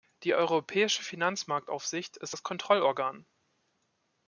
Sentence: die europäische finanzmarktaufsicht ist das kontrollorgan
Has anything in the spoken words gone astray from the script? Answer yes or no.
no